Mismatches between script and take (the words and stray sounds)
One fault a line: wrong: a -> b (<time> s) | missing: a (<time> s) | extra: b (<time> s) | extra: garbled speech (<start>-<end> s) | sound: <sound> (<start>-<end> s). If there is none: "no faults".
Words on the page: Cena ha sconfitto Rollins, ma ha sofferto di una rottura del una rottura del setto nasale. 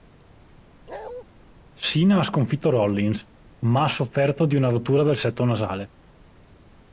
sound: bark (0.9-1.2 s)
missing: una rottura del (5.2 s)